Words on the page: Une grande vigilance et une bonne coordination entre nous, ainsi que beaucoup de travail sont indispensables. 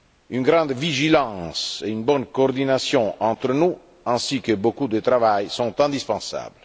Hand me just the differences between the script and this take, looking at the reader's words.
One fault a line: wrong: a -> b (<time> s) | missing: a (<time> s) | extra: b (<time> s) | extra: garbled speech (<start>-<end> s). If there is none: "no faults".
no faults